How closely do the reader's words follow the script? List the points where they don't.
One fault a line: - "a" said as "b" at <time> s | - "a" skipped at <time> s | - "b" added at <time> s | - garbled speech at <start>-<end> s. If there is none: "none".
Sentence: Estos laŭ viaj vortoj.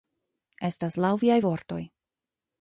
- "Estos" said as "Estas" at 0.7 s